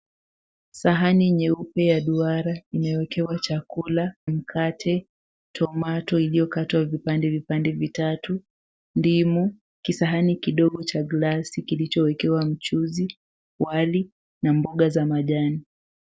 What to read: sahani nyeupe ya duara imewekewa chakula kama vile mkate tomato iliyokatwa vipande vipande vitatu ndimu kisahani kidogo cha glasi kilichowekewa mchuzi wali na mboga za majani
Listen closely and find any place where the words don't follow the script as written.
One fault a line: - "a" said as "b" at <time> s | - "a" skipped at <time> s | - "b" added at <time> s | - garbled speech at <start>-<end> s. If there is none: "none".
- "kama vile" skipped at 4.1 s